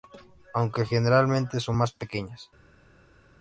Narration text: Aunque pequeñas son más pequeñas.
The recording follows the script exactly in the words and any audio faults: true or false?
false